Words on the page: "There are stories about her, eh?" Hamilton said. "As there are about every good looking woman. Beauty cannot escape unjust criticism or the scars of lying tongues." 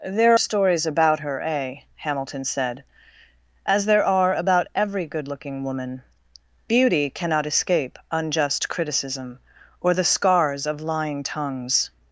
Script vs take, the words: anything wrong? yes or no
yes